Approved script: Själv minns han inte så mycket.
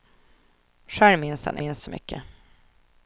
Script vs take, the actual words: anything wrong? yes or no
yes